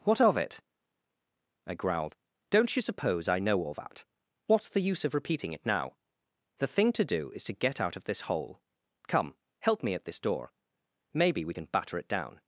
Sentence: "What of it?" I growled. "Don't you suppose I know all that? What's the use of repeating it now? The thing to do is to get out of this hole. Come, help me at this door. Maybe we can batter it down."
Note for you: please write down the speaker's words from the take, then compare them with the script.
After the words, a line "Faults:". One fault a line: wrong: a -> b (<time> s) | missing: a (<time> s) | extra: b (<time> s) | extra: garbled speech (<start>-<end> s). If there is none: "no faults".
"What of it?" I growled. "Don't you suppose I know all that? What's the use of repeating it now? The thing to do is to get out of this hole. Come, help me at this door. Maybe we can batter it down."
Faults:
no faults